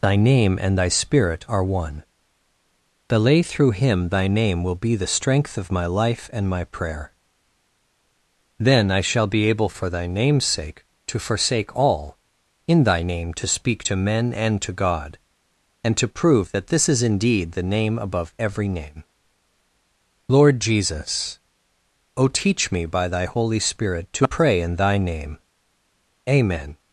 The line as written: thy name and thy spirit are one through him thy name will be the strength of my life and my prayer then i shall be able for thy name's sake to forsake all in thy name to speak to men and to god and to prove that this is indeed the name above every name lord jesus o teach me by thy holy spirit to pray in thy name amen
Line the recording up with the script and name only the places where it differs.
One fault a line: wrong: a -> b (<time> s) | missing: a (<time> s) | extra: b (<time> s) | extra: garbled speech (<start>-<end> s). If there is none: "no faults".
extra: the lay (3.1 s)